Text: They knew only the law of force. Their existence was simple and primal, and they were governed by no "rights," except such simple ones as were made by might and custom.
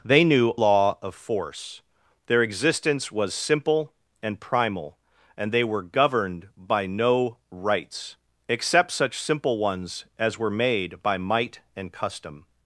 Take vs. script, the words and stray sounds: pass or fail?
fail